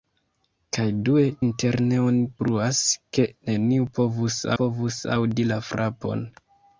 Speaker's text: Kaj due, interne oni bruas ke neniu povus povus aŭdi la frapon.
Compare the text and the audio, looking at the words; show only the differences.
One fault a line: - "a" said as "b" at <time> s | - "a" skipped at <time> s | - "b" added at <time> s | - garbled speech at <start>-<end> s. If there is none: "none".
none